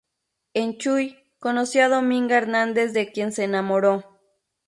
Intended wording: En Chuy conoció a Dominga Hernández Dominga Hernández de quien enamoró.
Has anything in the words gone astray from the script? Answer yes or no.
yes